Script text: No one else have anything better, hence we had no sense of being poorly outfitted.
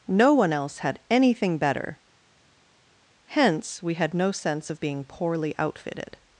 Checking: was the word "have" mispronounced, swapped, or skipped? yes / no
yes